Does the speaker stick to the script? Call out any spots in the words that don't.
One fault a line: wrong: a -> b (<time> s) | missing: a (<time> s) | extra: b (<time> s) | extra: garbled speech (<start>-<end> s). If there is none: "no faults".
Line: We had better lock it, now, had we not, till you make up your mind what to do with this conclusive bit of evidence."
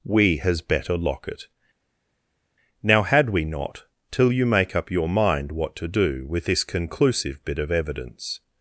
wrong: had -> has (0.4 s)